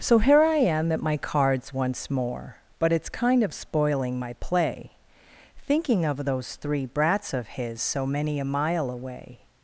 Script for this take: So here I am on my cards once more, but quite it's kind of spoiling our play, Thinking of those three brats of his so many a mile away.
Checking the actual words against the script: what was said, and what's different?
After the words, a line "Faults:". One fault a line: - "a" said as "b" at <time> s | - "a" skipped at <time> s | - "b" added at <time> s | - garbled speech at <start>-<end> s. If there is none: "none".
So here I am at my cards once more, but it's kind of spoiling my play, Thinking of those three brats of his so many a mile away.
Faults:
- "on" said as "at" at 0.9 s
- "quite" skipped at 2.9 s
- "our" said as "my" at 4.2 s